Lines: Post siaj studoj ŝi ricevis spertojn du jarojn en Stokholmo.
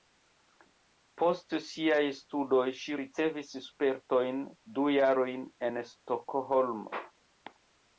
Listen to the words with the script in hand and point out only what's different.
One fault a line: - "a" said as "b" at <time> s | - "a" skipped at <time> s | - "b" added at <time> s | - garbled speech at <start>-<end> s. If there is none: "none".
none